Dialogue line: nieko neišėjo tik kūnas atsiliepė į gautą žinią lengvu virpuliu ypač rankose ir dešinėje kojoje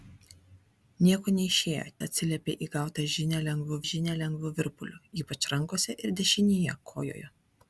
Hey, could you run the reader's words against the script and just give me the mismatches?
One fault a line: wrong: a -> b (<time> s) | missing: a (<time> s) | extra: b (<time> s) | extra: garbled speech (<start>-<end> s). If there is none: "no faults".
missing: tik kūnas (1.8 s)
extra: žinią lengvu (3.9 s)